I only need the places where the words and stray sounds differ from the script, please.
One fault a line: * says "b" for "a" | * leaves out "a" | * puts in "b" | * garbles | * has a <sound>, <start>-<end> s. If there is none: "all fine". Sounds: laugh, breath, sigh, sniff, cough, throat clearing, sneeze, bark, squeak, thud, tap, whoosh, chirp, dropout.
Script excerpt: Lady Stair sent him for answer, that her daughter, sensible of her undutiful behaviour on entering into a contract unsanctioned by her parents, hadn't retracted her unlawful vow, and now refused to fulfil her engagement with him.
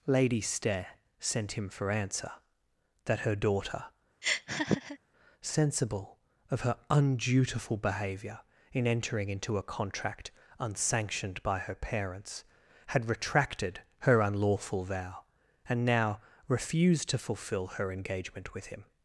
* has a laugh, 4.2-5.0 s
* says "in" for "on"
* says "had" for "hadn't"